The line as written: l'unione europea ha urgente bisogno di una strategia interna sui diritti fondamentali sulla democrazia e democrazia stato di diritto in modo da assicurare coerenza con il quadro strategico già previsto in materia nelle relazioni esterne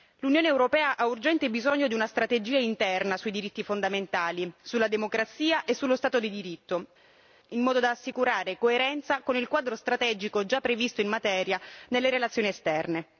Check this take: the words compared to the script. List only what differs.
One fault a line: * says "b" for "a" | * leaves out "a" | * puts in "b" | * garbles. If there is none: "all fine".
* says "sullo" for "democrazia"